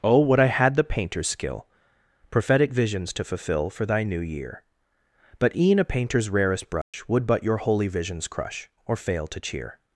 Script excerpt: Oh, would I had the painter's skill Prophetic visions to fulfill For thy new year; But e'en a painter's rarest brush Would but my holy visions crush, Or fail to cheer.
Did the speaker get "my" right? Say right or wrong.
wrong